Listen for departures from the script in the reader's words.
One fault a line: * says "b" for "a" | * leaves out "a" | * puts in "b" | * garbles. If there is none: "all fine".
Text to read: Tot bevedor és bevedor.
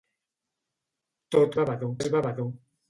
all fine